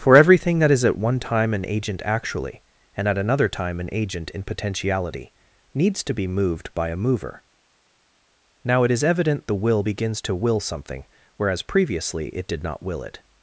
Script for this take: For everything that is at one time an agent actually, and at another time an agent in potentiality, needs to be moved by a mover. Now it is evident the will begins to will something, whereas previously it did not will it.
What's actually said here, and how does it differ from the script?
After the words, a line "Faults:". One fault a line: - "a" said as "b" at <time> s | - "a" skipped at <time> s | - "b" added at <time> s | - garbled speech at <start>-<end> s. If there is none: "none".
For everything that is at one time an agent actually, and at another time an agent in potentiality, needs to be moved by a mover. Now it is evident the will begins to will something, whereas previously it did not will it.
Faults:
none